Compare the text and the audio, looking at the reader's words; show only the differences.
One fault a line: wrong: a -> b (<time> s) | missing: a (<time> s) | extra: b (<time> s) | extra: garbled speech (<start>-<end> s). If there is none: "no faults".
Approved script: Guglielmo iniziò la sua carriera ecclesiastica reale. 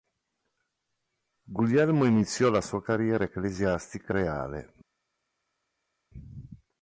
no faults